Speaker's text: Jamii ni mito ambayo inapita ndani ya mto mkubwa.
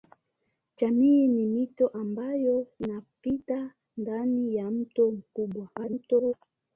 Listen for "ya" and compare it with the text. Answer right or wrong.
right